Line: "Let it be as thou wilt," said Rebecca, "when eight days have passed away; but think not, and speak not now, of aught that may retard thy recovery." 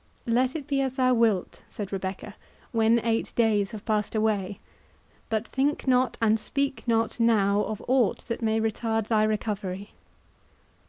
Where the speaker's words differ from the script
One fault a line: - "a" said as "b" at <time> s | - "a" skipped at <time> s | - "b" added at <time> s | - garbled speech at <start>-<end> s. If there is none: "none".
none